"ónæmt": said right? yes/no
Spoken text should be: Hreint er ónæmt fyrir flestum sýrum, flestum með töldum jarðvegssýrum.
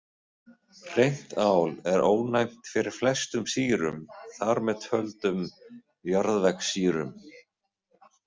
yes